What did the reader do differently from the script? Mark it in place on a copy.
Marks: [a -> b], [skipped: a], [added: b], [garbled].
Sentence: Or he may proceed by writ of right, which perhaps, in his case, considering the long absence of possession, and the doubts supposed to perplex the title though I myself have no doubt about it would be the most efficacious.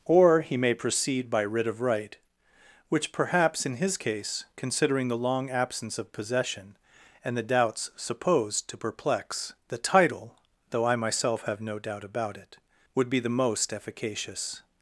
Or he may proceed by writ of right, which perhaps, in his case, considering the long absence of possession, and the doubts supposed to perplex the title though I myself have no doubt about it would be the most efficacious.